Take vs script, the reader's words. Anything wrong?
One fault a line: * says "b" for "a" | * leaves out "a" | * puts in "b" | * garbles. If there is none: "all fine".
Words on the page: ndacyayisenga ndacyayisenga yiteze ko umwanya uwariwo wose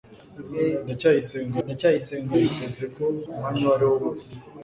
all fine